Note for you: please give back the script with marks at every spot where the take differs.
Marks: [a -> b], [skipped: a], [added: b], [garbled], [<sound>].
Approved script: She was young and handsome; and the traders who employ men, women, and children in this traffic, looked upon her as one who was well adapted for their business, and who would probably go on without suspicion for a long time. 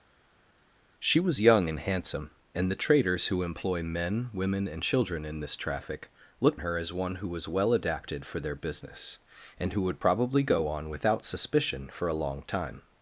She was young and handsome; and the traders who employ men, women, and children in this traffic, looked [skipped: upon] her as one who was well adapted for their business, and who would probably go on without suspicion for a long time.